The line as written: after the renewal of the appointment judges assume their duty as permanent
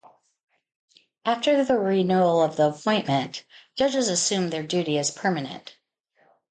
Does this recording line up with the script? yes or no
yes